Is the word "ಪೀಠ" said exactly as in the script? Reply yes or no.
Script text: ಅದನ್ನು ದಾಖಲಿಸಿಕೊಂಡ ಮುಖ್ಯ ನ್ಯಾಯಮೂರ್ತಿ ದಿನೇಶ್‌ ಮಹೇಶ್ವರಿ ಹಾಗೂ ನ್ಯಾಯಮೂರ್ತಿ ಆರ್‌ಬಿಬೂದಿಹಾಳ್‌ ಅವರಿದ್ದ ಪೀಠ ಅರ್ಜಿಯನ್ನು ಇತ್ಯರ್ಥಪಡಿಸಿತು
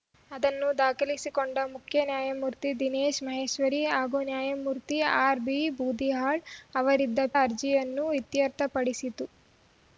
no